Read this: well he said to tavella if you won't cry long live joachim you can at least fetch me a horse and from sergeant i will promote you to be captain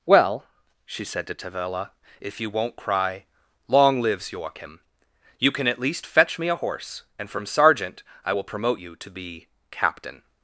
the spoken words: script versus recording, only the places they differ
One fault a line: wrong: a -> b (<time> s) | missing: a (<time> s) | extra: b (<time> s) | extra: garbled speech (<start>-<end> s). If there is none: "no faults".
wrong: he -> she (0.8 s)
wrong: live -> lives (4.0 s)